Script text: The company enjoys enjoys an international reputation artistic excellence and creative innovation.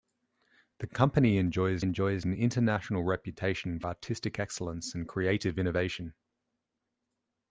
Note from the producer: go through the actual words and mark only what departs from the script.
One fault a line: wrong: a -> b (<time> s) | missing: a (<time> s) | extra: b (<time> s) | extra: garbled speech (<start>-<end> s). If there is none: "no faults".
no faults